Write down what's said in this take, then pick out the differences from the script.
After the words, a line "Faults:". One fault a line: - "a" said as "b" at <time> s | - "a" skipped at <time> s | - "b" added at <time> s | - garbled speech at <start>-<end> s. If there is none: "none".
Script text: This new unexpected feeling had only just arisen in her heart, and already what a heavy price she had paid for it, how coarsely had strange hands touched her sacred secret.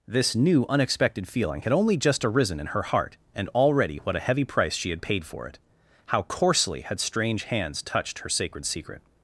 This new unexpected feeling had only just arisen in her heart, and already what a heavy price she had paid for it, how coarsely had strange hands touched her sacred secret.
Faults:
none